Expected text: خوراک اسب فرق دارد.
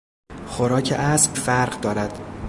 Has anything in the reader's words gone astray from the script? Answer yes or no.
no